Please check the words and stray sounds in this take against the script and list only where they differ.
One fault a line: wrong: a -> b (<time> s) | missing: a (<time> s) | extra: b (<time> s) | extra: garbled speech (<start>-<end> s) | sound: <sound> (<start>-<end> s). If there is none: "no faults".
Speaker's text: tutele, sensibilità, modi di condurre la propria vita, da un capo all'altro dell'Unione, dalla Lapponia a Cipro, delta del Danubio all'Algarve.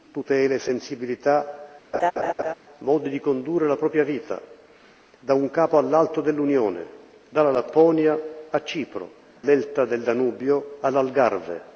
sound: laugh (1.9-2.5 s)